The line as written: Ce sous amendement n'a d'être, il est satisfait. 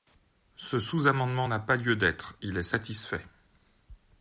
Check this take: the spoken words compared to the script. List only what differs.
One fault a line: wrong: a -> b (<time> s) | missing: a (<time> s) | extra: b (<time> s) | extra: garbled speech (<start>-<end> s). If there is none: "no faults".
extra: pas lieu (1.6 s)